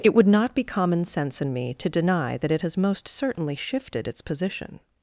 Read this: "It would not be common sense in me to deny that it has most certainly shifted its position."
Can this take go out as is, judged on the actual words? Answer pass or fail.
pass